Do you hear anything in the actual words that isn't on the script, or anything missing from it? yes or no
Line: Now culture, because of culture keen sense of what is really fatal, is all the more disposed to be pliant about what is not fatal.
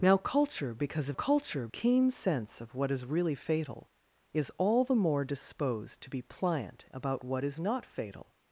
no